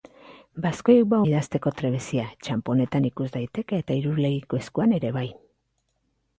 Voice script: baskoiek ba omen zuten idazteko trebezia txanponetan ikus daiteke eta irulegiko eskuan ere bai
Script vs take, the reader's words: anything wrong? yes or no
yes